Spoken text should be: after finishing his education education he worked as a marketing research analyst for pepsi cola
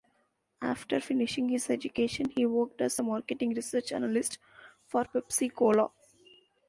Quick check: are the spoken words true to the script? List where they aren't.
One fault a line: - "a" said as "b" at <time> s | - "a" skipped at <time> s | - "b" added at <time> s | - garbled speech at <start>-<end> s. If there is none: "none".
- "education" skipped at 2.3 s